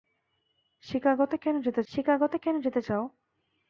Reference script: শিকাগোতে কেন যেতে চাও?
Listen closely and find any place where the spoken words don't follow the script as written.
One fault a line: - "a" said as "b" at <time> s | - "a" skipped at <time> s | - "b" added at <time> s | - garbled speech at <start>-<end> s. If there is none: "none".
- "শিকাগোতে কেন যেতে" added at 1.9 s